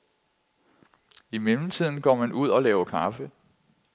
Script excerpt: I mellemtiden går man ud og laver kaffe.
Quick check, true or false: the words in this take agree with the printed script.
true